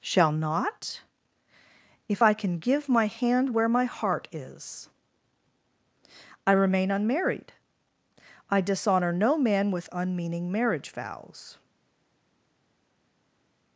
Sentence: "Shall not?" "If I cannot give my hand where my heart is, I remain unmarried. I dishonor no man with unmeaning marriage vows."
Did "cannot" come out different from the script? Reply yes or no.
yes